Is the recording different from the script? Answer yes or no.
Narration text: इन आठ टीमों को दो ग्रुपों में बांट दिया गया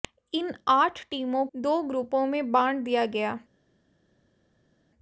yes